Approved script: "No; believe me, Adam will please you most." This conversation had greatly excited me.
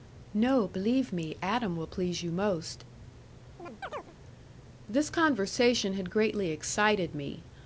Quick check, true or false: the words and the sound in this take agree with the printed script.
false